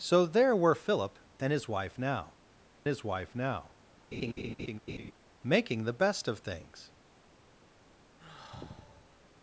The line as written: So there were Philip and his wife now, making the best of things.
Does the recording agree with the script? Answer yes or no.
no